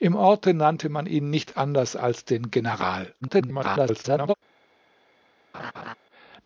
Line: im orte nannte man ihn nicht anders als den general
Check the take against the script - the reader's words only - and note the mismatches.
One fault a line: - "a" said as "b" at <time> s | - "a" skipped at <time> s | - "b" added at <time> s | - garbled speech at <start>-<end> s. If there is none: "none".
- garbled speech at 3.2-4.3 s